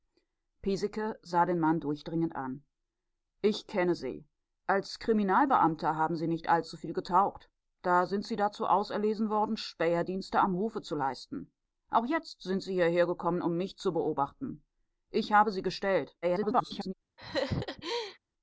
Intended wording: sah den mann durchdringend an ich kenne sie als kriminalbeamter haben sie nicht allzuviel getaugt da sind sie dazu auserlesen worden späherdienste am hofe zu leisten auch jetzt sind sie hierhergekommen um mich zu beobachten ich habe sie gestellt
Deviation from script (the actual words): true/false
true